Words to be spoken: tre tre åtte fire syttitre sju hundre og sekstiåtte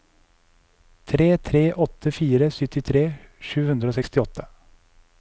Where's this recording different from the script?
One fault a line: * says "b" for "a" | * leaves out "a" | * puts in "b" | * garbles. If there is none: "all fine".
all fine